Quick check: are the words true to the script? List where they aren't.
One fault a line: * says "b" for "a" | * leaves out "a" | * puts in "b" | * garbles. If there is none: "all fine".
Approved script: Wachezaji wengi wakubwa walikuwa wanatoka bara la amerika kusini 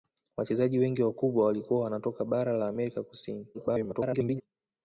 * garbles